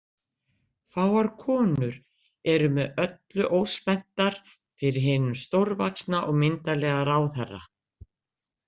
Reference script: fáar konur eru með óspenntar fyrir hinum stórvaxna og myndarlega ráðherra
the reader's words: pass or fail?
fail